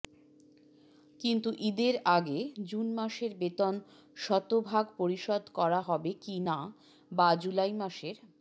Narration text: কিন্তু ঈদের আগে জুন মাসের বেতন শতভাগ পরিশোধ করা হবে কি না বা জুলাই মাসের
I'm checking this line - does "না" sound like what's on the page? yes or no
yes